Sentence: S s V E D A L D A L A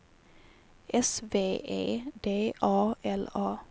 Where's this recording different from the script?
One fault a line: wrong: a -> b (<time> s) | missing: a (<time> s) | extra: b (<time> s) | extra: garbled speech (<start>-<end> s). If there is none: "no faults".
missing: s (1.2 s)
missing: D A L (3.3 s)